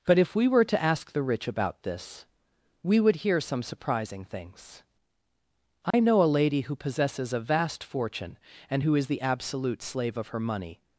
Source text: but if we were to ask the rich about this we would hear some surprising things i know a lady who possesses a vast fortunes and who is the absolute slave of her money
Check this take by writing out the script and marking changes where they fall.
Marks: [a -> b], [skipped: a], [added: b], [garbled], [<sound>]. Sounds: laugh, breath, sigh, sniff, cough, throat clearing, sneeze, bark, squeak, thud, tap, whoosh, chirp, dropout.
but if we were to ask the rich about this we would hear some surprising things i [dropout] know a lady who possesses a vast [fortunes -> fortune] and who is the absolute slave of her money